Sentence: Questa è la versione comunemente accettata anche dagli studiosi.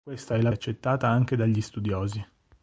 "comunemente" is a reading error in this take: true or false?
true